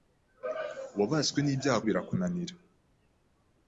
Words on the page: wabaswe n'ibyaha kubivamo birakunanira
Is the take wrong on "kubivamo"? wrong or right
wrong